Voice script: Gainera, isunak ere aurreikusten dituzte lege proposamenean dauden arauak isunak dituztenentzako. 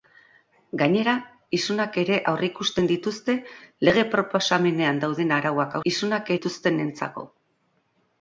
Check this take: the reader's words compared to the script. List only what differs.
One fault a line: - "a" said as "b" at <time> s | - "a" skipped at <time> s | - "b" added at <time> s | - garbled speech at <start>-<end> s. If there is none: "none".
none